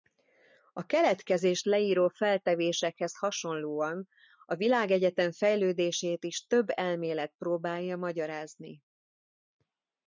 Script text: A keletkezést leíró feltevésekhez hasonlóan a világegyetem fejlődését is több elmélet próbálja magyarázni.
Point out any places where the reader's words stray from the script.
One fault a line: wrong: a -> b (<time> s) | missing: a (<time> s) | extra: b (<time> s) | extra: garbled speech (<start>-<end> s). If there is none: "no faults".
no faults